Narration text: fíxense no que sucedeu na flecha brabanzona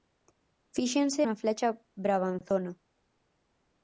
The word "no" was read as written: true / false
false